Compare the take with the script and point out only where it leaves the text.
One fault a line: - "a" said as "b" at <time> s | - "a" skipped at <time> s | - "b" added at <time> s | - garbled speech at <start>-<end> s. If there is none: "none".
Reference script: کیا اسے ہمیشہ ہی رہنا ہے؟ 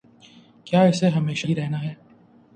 none